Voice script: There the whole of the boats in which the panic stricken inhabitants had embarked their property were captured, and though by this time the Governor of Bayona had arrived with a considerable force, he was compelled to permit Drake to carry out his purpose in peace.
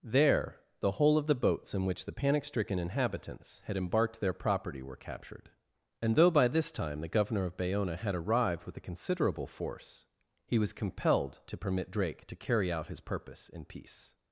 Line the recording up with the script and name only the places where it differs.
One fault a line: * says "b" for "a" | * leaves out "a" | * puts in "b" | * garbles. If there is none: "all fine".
all fine